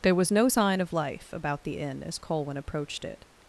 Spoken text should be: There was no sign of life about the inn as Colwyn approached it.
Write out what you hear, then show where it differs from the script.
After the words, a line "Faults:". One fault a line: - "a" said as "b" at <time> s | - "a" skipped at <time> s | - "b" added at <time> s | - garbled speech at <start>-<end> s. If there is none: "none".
There was no sign of life about the inn as Colwyn approached it.
Faults:
none